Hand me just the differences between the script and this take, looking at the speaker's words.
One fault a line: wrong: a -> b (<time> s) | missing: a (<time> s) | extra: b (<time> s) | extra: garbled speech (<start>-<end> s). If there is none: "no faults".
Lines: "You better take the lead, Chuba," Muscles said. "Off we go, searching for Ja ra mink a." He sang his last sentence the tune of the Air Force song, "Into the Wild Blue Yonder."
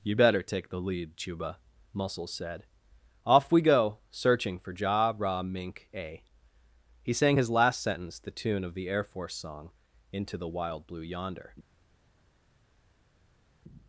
no faults